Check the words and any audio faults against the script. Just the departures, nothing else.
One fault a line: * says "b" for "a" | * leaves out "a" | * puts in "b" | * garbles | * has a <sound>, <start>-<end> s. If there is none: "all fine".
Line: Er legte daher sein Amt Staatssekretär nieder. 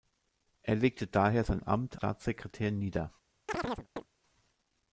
* has a chirp, 3.5-4.1 s